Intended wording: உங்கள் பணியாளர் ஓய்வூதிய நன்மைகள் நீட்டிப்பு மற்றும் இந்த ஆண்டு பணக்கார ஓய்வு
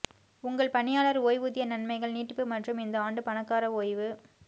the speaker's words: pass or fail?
pass